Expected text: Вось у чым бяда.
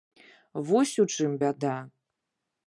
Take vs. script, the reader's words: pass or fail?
pass